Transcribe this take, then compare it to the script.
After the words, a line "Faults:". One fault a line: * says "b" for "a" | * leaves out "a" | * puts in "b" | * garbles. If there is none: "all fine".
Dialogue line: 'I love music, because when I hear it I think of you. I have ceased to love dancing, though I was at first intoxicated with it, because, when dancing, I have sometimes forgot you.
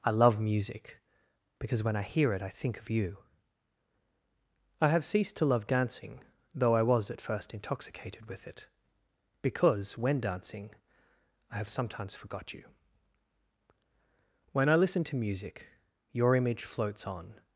'I love music, because when I hear it I think of you. I have ceased to love dancing, though I was at first intoxicated with it, because, when dancing, I have sometimes forgot you. When I listen to music, your image floats on
Faults:
* puts in "When I listen to music your image floats on"